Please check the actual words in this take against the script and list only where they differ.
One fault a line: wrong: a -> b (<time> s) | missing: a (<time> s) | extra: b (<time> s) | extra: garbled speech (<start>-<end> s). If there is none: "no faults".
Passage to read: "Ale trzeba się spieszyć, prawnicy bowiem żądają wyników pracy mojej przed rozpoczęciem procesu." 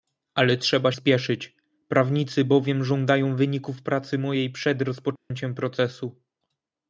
missing: się (0.9 s)